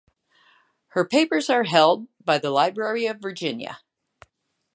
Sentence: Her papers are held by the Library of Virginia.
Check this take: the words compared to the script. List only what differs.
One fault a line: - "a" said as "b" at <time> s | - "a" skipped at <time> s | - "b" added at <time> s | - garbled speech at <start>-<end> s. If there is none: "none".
none